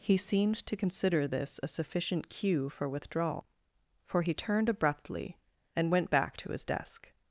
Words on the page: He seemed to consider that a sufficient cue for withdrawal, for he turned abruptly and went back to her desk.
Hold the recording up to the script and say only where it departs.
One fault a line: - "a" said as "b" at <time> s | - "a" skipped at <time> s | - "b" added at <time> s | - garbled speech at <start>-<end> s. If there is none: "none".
- "that" said as "this" at 1.3 s
- "her" said as "his" at 6.5 s